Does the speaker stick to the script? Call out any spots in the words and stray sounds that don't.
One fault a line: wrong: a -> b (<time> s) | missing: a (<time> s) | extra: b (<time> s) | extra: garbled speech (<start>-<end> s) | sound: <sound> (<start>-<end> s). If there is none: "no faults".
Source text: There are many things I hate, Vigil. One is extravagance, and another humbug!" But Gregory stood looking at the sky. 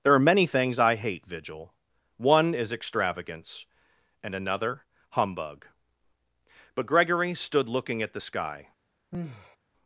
sound: sigh (9.1-9.6 s)